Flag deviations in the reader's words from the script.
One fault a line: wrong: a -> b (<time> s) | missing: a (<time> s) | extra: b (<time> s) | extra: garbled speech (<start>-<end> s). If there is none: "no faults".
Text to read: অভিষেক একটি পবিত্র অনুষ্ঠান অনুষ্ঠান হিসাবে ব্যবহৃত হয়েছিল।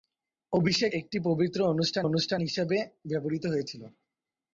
no faults